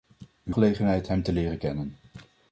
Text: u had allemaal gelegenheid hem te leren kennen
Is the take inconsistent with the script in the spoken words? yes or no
yes